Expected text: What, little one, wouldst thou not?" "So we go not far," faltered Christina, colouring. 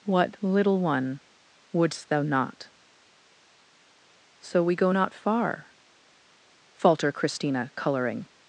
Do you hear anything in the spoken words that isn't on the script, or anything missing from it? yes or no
yes